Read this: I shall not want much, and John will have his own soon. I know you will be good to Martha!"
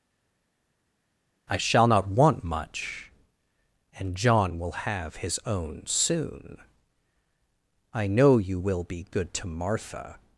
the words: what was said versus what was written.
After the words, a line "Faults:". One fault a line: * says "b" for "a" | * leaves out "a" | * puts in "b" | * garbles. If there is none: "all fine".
I shall not want much, and John will have his own soon. I know you will be good to Martha!"
Faults:
all fine